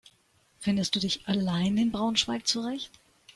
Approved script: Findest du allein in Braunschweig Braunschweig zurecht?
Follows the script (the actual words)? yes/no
no